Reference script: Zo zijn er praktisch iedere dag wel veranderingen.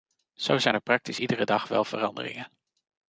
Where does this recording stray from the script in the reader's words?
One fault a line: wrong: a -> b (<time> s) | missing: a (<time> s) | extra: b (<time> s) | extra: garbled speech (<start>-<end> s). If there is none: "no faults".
no faults